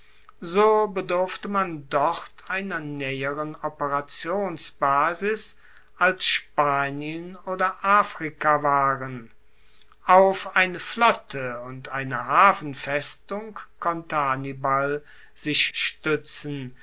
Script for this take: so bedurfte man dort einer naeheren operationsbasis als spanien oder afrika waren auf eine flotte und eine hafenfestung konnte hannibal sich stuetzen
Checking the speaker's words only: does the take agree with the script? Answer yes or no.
yes